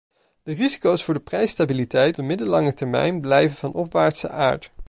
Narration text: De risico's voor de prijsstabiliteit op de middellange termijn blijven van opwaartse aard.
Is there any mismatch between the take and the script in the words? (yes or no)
yes